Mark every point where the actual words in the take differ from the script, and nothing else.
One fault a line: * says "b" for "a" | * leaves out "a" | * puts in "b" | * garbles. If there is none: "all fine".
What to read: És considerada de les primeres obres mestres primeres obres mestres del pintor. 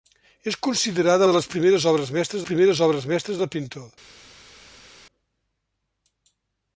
all fine